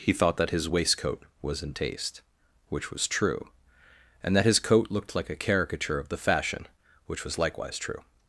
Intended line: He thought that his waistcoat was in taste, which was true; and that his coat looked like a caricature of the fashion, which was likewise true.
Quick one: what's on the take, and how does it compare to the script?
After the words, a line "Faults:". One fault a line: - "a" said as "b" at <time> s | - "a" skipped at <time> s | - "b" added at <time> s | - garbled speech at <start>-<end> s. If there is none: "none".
He thought that his waistcoat was in taste, which was true; and that his coat looked like a caricature of the fashion, which was likewise true.
Faults:
none